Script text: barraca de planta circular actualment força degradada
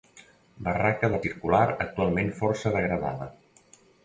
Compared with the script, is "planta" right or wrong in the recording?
wrong